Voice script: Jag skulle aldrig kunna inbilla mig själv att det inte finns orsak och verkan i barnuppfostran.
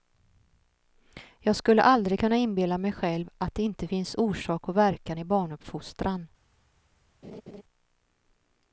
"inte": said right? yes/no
yes